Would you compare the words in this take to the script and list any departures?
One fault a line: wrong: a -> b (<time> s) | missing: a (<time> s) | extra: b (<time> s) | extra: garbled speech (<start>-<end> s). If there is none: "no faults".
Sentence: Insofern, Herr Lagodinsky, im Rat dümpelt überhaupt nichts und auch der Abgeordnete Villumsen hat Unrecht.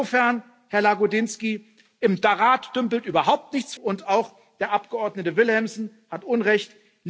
no faults